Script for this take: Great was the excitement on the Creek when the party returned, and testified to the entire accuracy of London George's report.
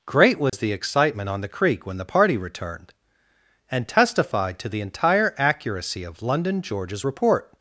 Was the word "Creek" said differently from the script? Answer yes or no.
no